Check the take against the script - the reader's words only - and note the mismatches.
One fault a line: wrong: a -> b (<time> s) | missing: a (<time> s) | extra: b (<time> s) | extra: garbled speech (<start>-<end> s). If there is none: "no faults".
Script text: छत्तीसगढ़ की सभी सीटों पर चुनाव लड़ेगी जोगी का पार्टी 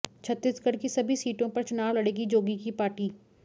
wrong: का -> की (2.6 s)